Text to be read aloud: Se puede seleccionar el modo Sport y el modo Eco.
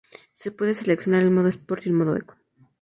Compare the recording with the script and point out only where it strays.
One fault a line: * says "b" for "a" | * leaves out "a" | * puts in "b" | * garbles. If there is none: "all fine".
all fine